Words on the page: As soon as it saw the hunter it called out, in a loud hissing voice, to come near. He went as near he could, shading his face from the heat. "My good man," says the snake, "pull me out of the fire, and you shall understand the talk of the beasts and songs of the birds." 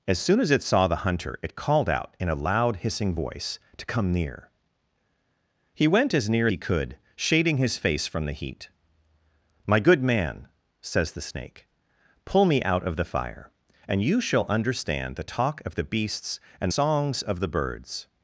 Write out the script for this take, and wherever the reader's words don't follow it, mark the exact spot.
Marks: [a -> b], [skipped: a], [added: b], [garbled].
As soon as it saw the hunter it called out, in a loud hissing voice, to come near. He went as near he could, shading his face from the heat. "My good man," says the snake, "pull me out of the fire, and you shall understand the talk of the beasts and songs of the birds."